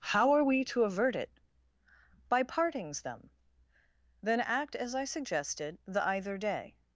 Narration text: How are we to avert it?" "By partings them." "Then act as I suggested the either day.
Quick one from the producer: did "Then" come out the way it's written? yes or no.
yes